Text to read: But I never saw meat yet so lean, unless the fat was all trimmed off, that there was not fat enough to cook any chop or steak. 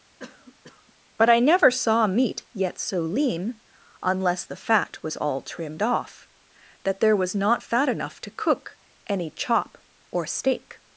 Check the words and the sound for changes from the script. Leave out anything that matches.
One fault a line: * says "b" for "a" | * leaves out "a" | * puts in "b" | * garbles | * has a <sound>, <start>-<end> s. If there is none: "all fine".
* has a cough, 0.2-0.9 s